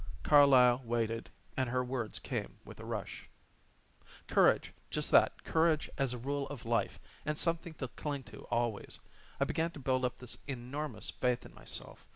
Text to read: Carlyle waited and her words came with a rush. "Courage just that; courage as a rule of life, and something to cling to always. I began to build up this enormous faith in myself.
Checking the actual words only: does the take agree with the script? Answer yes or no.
yes